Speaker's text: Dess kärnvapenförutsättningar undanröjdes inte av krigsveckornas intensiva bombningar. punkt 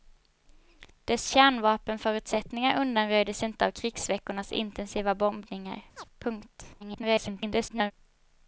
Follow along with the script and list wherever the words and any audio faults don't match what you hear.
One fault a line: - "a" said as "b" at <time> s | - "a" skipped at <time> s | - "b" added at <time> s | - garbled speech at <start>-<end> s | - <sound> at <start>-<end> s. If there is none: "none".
- chirp at 6.0-6.1 s
- garbled speech at 6.8-7.9 s